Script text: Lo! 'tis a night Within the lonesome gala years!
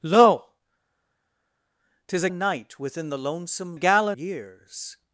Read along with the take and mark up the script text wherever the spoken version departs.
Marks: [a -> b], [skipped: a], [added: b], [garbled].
Lo! 'tis a night Within the lonesome gala years!